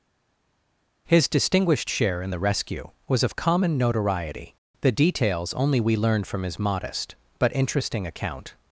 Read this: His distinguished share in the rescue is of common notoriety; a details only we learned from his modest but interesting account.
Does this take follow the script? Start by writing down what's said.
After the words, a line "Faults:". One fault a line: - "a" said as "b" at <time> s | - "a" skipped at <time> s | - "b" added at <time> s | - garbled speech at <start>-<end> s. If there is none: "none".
His distinguished share in the rescue was of common notoriety; the details only we learned from his modest but interesting account.
Faults:
- "is" said as "was" at 3.1 s
- "a" said as "the" at 4.8 s